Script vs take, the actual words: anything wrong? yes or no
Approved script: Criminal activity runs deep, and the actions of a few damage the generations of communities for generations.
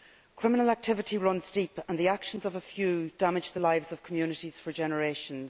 yes